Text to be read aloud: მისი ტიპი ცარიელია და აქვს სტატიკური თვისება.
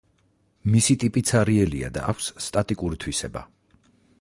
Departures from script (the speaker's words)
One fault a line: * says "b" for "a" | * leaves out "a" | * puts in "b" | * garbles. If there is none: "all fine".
all fine